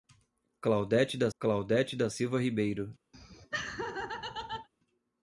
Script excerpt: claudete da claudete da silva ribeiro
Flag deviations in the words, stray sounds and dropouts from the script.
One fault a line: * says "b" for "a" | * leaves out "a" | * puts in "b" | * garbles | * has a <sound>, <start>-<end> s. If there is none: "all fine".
* has a laugh, 3.1-4.7 s